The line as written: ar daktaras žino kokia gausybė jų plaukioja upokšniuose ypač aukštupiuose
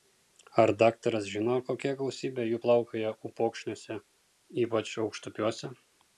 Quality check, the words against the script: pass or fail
pass